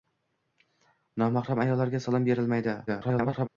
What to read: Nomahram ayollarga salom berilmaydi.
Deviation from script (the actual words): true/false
true